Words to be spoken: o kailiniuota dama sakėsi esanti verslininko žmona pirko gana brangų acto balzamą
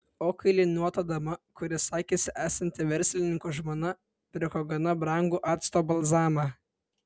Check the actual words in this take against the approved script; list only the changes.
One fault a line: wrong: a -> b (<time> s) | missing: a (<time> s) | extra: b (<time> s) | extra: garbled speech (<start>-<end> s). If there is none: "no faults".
extra: kuri (1.6 s)